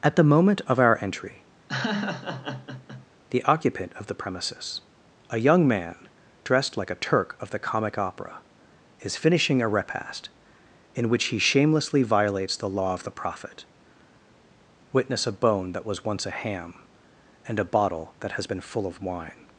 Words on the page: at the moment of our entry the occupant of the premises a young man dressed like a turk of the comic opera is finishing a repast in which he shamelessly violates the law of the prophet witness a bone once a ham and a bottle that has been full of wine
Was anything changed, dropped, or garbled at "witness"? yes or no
no